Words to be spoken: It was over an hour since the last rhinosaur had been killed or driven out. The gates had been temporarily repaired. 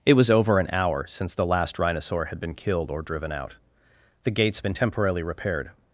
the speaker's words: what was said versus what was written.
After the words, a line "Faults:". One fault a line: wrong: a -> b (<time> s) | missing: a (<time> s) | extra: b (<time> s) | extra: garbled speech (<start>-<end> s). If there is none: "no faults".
It was over an hour since the last rhinosaur had been killed or driven out. The gates been temporarily repaired.
Faults:
missing: had (4.6 s)